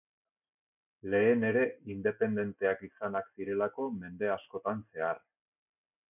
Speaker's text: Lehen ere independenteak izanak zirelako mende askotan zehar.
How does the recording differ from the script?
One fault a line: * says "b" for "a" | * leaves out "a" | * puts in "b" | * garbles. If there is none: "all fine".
all fine